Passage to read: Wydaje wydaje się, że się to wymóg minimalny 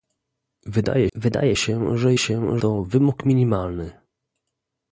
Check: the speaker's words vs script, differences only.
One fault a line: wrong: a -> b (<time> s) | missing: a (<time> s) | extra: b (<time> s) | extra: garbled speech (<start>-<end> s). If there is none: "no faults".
no faults